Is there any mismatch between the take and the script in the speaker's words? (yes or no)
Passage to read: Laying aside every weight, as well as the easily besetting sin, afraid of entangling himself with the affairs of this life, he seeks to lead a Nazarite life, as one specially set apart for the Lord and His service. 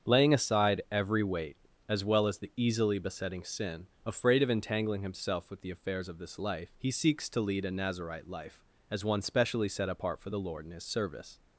no